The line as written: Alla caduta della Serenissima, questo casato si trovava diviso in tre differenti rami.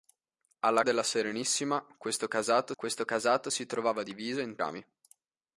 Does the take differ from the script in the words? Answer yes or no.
yes